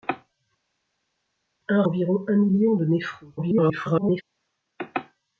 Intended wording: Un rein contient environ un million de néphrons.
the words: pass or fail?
fail